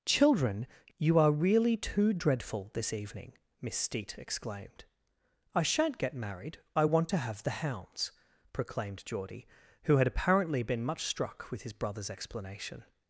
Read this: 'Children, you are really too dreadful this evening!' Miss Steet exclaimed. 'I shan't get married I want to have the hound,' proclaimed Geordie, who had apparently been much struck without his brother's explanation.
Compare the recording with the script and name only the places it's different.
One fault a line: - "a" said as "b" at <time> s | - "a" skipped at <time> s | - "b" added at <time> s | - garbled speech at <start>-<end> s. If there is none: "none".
- "hound" said as "hounds" at 7.7 s
- "without" said as "with" at 11.5 s